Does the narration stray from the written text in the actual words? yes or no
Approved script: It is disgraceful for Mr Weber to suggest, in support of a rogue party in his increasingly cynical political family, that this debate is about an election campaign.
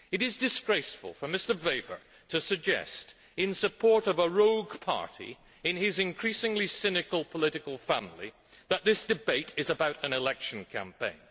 no